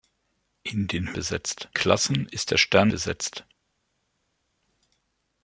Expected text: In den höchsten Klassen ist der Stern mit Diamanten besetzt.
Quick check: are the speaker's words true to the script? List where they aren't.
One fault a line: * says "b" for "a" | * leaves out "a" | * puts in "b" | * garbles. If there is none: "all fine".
* says "besetzt" for "höchsten"
* leaves out "mit Diamanten"